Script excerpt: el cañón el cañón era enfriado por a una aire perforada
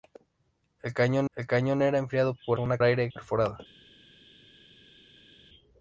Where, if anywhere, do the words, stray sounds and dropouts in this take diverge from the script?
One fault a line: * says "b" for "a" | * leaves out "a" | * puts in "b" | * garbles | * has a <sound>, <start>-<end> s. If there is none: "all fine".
all fine